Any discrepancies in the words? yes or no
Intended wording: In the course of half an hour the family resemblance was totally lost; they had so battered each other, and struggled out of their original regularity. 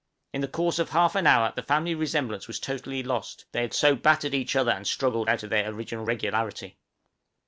no